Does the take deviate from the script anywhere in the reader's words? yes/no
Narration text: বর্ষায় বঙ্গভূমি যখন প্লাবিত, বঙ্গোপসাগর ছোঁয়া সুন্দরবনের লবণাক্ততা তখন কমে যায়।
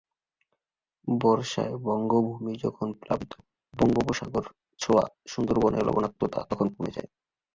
no